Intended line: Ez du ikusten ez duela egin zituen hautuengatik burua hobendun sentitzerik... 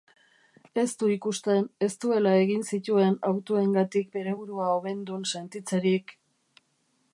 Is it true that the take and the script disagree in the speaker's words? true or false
true